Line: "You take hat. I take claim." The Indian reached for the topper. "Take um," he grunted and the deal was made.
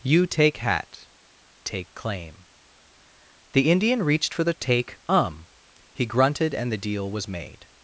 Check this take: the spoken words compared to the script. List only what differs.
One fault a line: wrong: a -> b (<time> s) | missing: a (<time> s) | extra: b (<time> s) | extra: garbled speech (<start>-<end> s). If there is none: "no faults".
missing: I (1.1 s)
missing: topper (4.5 s)